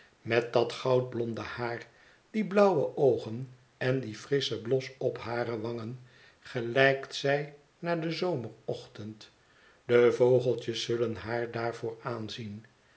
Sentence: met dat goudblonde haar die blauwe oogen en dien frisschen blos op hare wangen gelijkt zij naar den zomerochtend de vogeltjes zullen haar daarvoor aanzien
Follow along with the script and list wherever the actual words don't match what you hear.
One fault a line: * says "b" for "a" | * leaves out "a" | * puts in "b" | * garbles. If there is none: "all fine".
all fine